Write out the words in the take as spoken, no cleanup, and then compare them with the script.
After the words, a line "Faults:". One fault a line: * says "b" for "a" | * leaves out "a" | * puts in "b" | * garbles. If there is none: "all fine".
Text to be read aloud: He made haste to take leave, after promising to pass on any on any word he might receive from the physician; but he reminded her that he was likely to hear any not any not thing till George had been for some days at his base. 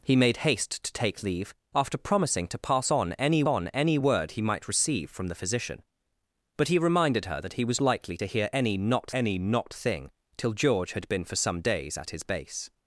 He made haste to take leave, after promising to pass on any on any word he might receive from the physician; but he reminded her that he was likely to hear any not any not thing till George had been for some days at his base.
Faults:
all fine